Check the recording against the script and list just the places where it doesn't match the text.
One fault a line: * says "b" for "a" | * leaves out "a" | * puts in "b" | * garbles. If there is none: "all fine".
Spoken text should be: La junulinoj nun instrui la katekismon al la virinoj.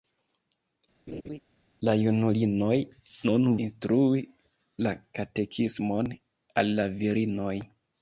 all fine